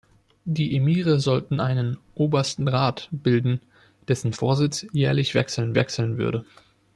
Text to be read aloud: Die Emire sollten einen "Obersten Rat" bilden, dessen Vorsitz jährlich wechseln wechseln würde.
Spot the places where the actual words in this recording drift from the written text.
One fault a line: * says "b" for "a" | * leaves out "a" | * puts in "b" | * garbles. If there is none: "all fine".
all fine